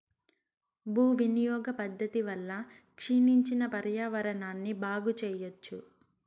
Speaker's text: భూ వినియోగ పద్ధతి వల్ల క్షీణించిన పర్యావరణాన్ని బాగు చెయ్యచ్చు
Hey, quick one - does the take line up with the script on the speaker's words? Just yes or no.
yes